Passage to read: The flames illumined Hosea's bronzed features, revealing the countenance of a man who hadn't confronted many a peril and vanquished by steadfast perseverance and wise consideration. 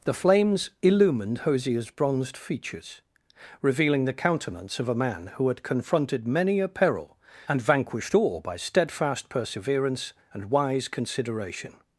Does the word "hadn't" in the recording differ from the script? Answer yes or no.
yes